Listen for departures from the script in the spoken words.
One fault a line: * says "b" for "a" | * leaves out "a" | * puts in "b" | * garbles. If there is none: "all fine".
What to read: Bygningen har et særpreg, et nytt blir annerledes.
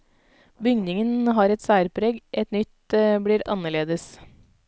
all fine